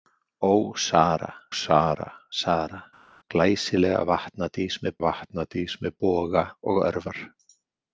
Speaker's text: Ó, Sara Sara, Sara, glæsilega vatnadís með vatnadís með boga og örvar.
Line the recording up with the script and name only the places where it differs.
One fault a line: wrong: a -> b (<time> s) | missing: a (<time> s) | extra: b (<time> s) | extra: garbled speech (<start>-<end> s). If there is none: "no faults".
no faults